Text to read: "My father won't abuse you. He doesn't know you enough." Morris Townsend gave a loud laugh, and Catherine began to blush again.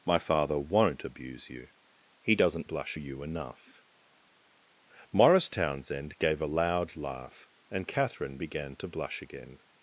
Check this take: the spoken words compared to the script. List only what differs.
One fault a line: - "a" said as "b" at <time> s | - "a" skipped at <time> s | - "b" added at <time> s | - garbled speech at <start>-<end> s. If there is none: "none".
- "know" said as "blush" at 2.6 s